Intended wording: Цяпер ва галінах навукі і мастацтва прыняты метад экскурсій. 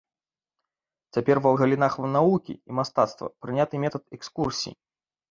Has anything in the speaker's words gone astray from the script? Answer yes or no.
no